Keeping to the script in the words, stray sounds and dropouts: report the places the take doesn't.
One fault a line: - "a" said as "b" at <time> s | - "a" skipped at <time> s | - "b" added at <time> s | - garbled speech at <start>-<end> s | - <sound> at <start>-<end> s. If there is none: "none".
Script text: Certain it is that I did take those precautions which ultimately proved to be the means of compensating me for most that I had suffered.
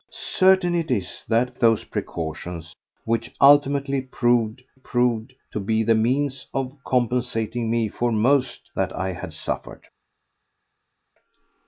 - "I did take" skipped at 1.5 s
- "proved" added at 4.7 s